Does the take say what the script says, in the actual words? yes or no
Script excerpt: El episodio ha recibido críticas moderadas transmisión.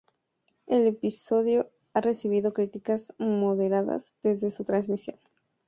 no